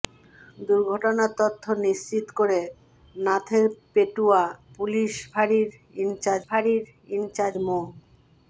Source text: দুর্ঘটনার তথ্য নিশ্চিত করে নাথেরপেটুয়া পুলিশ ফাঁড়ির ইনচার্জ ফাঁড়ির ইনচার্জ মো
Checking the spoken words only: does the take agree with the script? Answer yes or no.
yes